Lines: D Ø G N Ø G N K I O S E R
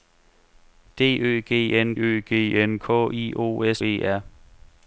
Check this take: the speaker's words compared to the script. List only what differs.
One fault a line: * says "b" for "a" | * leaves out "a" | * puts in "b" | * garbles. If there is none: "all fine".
all fine